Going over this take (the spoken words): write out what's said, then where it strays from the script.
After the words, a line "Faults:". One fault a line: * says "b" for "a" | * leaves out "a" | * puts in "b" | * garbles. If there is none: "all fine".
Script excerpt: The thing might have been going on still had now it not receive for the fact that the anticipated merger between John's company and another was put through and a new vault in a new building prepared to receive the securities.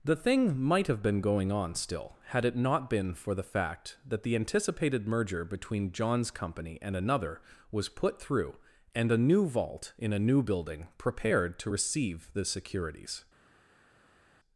The thing might have been going on still had it not been for the fact that the anticipated merger between John's company and another was put through and a new vault in a new building prepared to receive the securities.
Faults:
* leaves out "now"
* says "been" for "receive"